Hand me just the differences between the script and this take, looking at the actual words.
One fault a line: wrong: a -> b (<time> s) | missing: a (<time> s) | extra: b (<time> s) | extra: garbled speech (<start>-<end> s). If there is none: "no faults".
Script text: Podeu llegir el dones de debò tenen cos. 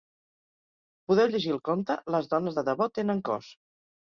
extra: conte Les (1.7 s)